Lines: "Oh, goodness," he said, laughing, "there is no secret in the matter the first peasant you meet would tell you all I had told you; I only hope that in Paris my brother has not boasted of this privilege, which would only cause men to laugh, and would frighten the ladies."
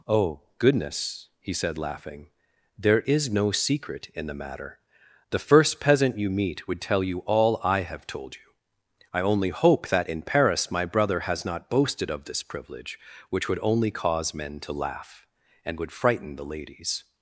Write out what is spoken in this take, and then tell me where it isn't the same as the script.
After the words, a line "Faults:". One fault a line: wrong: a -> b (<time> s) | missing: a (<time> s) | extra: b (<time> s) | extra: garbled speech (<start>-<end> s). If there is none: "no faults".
"Oh, goodness," he said, laughing, "there is no secret in the matter the first peasant you meet would tell you all I have told you; I only hope that in Paris my brother has not boasted of this privilege, which would only cause men to laugh, and would frighten the ladies."
Faults:
wrong: had -> have (7.8 s)